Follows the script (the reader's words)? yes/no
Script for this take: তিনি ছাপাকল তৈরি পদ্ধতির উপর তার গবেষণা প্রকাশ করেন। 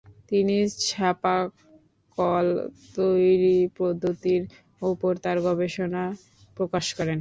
yes